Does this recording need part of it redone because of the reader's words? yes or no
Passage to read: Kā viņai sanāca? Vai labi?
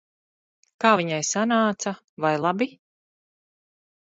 no